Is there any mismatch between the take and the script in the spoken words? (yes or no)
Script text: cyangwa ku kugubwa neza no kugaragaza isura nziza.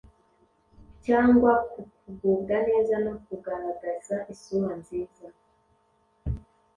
no